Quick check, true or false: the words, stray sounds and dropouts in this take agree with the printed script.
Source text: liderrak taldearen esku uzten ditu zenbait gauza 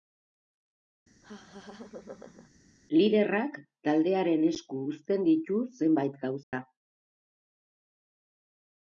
false